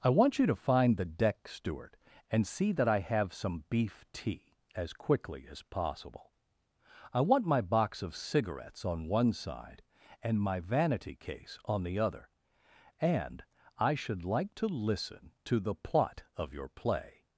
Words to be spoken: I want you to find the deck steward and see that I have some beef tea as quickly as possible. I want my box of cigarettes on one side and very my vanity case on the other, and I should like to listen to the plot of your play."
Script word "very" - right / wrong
wrong